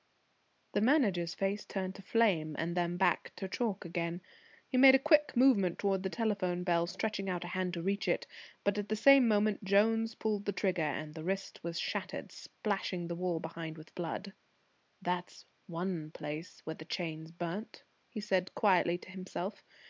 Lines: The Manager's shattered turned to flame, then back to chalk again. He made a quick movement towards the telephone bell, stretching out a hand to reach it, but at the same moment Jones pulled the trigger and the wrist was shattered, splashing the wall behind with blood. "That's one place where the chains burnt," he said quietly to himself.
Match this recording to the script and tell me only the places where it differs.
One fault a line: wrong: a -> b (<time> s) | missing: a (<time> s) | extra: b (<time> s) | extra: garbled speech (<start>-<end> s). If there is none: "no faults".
wrong: shattered -> face (1.4 s)
extra: and (2.6 s)